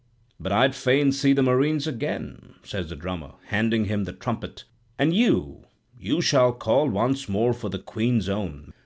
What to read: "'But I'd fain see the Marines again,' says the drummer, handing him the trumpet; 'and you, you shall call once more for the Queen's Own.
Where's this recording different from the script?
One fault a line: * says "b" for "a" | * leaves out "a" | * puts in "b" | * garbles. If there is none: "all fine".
all fine